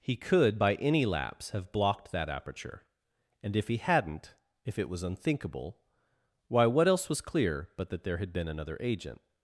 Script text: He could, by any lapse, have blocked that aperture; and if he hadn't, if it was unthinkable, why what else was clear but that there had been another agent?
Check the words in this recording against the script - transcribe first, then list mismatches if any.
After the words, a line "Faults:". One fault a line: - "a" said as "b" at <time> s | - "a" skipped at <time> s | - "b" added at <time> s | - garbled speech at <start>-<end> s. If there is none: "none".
He could, by any lapse, have blocked that aperture; and if he hadn't, if it was unthinkable, why what else was clear but that there had been another agent?
Faults:
none